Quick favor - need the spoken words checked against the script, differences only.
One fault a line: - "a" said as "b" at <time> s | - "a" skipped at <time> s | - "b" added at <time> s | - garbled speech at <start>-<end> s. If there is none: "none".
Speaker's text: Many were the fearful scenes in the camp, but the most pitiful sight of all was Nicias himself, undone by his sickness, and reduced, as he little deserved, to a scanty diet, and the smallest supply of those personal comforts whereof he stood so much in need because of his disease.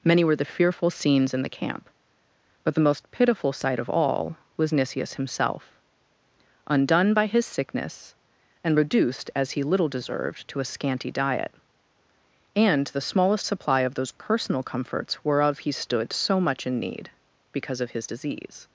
none